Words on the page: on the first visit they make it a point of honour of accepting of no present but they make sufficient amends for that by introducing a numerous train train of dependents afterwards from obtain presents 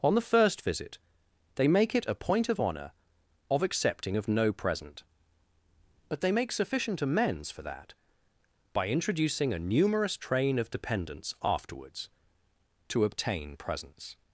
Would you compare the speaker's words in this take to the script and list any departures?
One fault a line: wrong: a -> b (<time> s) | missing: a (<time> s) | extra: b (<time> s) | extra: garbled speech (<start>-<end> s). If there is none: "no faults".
missing: train (10.6 s)
wrong: from -> to (12.9 s)